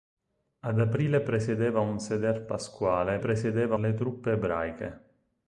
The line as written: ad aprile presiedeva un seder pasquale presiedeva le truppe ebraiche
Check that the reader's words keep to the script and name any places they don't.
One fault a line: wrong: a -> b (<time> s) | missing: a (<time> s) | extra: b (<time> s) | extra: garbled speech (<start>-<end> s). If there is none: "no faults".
no faults